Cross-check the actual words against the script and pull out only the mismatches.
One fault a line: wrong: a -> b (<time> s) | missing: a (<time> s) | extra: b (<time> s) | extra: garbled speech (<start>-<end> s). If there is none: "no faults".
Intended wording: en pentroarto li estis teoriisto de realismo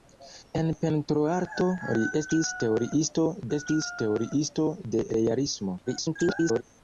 extra: estis teoriisto (3.6 s)
extra: garbled speech (5.9-6.6 s)